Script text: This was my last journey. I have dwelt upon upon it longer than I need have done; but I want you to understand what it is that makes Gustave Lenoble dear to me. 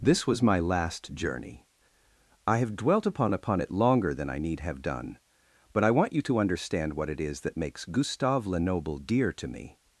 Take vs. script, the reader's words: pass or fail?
pass